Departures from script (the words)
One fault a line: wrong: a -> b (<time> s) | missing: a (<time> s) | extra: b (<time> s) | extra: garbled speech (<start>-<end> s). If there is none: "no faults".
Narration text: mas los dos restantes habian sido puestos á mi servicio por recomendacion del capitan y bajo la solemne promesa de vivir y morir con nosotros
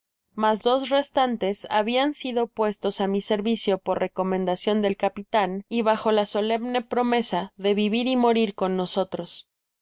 missing: los (0.6 s)